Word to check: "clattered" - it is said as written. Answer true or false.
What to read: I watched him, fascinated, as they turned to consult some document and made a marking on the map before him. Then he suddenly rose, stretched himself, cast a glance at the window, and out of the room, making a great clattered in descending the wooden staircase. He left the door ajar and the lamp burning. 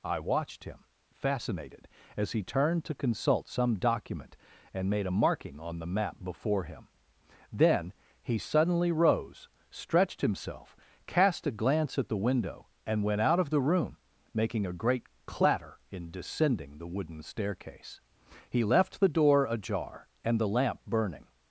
false